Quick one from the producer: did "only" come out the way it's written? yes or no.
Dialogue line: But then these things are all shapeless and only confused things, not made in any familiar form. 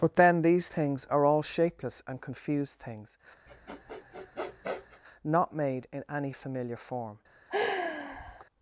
no